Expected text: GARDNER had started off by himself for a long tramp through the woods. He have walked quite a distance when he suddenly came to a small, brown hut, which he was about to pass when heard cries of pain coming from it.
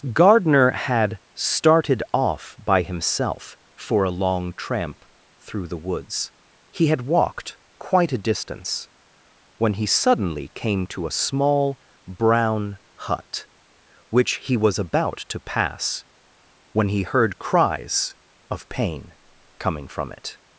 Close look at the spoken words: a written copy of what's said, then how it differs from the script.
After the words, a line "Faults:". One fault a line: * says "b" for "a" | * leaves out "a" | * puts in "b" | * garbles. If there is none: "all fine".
GARDNER had started off by himself for a long tramp through the woods. He had walked quite a distance when he suddenly came to a small, brown hut, which he was about to pass when he heard cries of pain coming from it.
Faults:
* says "had" for "have"
* puts in "he"